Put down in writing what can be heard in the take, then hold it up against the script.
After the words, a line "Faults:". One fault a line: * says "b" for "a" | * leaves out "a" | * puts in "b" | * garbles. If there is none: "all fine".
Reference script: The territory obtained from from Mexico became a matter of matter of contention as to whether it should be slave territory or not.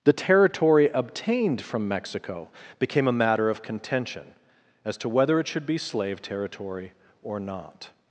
The territory obtained from Mexico became a matter of contention as to whether it should be slave territory or not.
Faults:
* leaves out "from"
* leaves out "matter of"